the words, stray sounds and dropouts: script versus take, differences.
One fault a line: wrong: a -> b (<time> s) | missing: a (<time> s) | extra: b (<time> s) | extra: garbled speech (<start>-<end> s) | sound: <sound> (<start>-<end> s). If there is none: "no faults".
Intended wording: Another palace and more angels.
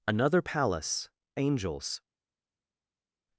missing: and more (1.1 s)